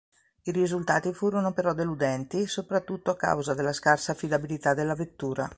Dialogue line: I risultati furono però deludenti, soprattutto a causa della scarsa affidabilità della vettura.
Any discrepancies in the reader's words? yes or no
no